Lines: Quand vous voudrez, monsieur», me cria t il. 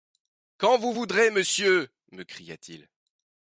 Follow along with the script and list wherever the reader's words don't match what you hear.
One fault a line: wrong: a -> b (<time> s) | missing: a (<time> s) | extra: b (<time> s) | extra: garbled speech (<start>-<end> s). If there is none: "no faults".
no faults